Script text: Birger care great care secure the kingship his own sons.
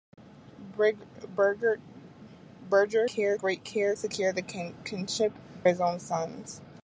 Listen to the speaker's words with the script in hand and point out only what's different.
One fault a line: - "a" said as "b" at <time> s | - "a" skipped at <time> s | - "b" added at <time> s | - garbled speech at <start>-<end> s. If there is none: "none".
none